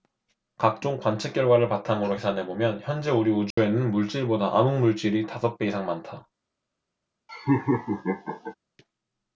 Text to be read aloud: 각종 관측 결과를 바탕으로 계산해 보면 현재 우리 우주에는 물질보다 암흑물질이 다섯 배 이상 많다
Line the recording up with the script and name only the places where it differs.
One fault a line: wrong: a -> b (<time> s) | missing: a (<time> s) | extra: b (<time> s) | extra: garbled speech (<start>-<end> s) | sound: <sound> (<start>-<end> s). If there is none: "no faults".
sound: dropout (3.5-3.6 s)
sound: laugh (7.3-8.5 s)